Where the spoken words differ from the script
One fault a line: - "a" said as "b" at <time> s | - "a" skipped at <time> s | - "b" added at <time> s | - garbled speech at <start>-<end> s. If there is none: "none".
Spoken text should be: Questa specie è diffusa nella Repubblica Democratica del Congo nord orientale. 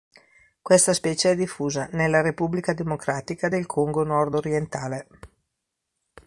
none